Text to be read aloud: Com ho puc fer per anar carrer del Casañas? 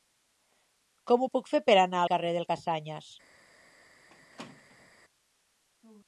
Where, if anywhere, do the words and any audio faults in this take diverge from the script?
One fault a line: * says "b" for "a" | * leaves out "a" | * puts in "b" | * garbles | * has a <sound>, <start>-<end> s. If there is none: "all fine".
* has a squeak, 4.1-4.9 s